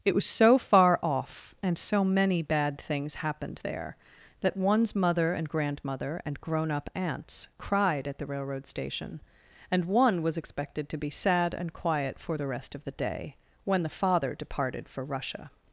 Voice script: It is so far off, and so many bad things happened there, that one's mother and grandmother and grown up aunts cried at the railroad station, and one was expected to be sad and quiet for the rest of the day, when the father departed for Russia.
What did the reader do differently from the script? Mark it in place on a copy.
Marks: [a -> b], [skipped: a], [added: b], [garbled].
It [is -> was] so far off, and so many bad things happened there, that one's mother and grandmother and grown up aunts cried at the railroad station, and one was expected to be sad and quiet for the rest of the day, when the father departed for Russia.